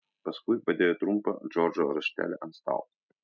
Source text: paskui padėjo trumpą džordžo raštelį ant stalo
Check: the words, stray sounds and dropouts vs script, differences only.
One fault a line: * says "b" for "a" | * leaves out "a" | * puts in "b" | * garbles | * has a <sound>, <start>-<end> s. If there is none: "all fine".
all fine